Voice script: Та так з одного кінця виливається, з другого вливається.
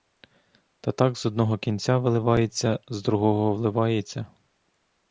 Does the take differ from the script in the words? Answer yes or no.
no